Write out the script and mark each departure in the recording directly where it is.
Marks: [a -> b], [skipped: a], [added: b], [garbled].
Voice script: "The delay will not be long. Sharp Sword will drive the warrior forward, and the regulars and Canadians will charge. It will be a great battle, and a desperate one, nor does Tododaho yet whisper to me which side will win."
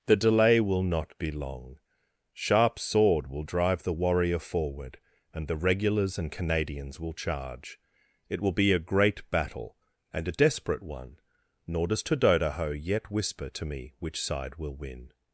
"The delay will not be long. Sharp Sword will drive the warrior forward, and the regulars and Canadians will charge. It will be a great battle, and a desperate one, nor does Tododaho yet whisper to me which side will win."